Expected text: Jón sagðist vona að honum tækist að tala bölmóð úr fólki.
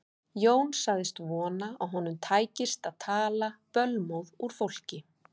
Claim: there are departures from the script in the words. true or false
false